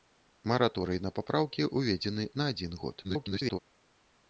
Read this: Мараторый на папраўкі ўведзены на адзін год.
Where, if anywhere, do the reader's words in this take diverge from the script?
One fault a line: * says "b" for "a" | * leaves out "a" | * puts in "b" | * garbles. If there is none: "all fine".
* garbles